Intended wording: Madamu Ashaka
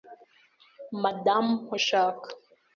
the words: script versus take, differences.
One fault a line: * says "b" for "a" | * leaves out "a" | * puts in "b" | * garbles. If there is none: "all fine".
all fine